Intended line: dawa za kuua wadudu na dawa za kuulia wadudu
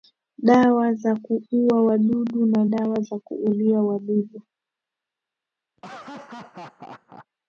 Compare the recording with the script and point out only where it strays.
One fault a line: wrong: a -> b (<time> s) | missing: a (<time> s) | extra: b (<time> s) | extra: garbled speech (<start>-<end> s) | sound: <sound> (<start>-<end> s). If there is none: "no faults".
sound: laugh (5.8-7.3 s)